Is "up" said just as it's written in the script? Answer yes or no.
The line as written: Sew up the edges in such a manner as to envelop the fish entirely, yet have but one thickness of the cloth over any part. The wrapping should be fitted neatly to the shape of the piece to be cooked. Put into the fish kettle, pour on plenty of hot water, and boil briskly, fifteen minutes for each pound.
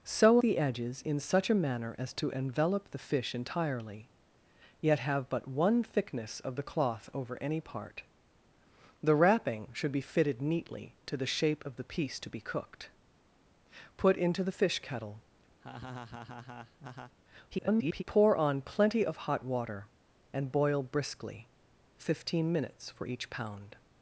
no